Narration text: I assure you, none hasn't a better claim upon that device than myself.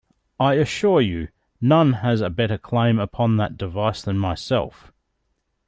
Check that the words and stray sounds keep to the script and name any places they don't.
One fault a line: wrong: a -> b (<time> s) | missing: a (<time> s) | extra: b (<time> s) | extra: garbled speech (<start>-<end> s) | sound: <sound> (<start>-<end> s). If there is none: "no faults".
wrong: hasn't -> has (1.9 s)